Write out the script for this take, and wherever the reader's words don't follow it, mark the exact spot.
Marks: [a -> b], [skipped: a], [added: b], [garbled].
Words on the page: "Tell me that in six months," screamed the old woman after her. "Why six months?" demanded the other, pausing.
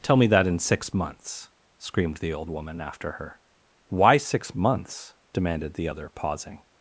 "Tell me that in six months," screamed the old woman after her. "Why six months?" demanded the other, pausing.